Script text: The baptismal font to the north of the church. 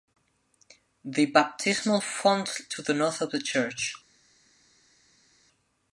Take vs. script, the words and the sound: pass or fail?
pass